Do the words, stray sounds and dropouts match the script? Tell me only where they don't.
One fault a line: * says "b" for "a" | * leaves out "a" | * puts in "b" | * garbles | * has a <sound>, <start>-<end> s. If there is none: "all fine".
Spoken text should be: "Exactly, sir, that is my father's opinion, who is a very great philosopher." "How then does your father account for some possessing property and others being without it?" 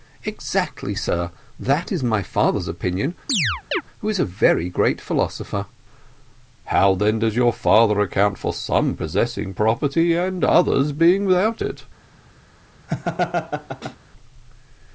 * has a chirp, 3.3-3.8 s
* has a laugh, 12.9-14.0 s